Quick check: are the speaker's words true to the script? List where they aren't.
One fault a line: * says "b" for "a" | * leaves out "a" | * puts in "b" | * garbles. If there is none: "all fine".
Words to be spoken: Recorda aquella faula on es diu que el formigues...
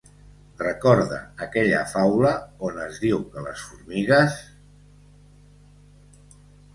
* says "les" for "el"